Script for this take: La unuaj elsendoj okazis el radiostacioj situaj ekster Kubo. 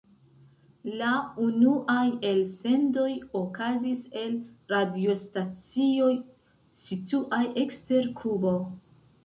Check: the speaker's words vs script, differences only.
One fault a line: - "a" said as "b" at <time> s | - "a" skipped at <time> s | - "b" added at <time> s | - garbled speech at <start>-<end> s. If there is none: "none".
none